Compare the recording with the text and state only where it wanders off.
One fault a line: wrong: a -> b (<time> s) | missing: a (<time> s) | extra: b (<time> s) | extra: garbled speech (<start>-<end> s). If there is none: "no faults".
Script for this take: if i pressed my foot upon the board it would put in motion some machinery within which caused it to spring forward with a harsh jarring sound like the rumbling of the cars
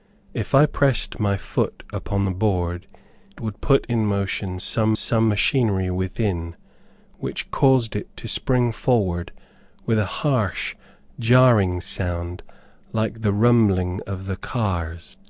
missing: it (2.9 s)
extra: some (4.9 s)